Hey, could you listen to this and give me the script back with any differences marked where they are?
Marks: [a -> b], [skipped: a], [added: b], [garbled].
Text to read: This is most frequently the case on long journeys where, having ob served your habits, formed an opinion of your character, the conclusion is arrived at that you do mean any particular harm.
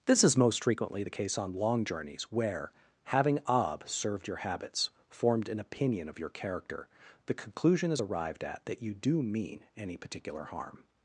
This is most frequently the case on long journeys where, having ob served your habits, formed an opinion of your character, the conclusion is arrived at that you do mean any particular harm.